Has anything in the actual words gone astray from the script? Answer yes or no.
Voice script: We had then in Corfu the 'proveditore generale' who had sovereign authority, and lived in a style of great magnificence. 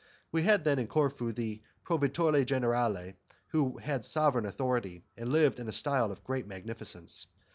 no